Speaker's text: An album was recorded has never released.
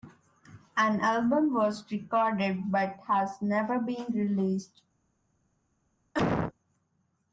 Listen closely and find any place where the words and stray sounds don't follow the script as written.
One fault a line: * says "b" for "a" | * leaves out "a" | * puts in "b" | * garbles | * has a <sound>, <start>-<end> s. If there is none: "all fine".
* puts in "but"
* puts in "been"
* has a cough, 6.1-6.5 s